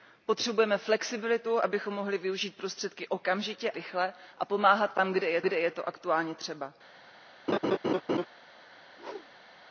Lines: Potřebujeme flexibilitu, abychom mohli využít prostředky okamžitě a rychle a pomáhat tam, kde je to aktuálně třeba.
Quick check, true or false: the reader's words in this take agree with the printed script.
false